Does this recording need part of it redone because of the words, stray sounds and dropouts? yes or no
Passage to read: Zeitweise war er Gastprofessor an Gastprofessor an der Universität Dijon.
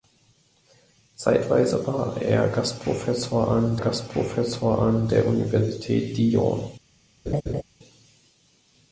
yes